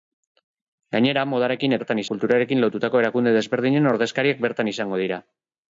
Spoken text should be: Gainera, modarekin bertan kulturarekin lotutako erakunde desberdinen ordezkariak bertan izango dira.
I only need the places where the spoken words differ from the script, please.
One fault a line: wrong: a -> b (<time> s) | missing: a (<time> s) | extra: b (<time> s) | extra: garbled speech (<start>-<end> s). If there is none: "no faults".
no faults